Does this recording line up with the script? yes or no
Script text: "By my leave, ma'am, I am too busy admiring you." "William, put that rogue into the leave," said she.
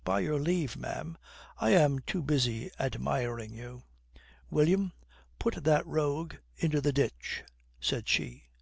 no